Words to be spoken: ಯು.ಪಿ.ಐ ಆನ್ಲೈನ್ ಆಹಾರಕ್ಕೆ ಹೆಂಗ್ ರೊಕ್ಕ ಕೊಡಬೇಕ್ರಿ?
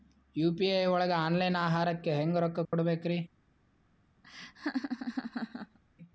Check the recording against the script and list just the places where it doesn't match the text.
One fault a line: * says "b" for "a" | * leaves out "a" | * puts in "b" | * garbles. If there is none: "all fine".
* puts in "ಒಳಗ"